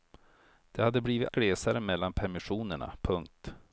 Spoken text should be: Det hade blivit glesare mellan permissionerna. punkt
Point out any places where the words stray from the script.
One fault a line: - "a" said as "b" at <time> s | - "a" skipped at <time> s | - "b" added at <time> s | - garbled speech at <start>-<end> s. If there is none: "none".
none